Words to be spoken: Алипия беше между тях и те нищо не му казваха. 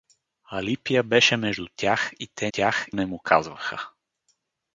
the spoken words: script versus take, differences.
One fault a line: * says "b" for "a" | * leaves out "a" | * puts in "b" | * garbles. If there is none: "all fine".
* says "тях" for "нищо"